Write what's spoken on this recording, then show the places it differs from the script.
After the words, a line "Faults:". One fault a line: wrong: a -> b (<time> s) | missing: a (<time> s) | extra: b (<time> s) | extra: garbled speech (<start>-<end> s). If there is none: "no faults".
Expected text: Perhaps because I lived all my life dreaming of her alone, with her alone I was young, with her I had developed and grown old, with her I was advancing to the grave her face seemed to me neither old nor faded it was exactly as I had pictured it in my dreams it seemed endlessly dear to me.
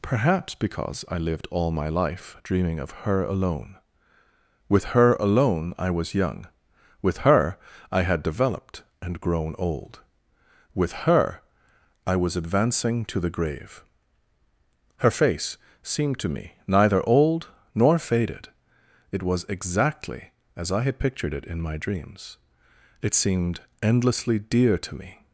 Perhaps because I lived all my life dreaming of her alone, with her alone I was young, with her I had developed and grown old, with her I was advancing to the grave her face seemed to me neither old nor faded it was exactly as I had pictured it in my dreams it seemed endlessly dear to me.
Faults:
no faults